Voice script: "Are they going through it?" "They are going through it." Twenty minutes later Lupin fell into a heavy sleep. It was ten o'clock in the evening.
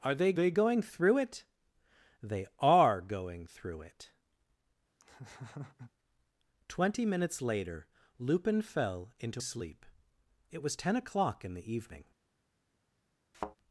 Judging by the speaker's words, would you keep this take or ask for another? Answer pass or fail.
fail